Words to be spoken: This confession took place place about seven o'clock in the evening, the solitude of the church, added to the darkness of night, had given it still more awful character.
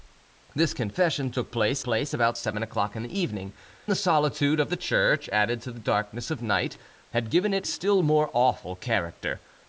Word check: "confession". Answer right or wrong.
right